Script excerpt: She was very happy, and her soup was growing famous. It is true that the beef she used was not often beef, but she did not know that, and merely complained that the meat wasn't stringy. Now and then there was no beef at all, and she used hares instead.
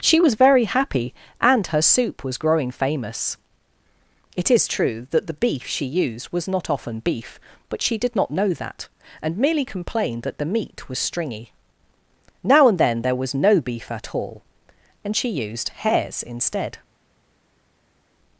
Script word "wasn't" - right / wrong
wrong